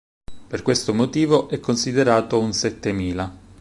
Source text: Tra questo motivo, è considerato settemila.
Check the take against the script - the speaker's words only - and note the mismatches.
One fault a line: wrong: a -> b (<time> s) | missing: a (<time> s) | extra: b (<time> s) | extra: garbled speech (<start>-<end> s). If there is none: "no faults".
wrong: Tra -> Per (0.5 s)
extra: un (2.4 s)